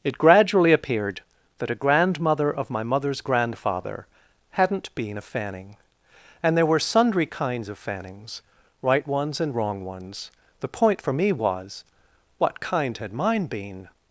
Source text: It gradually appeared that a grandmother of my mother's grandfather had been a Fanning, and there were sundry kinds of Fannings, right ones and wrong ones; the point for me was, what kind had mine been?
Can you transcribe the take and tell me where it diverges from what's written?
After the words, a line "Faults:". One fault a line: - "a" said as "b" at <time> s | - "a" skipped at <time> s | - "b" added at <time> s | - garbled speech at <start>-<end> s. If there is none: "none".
It gradually appeared that a grandmother of my mother's grandfather hadn't been a Fanning, and there were sundry kinds of Fannings, right ones and wrong ones; the point for me was, what kind had mine been?
Faults:
- "had" said as "hadn't" at 4.5 s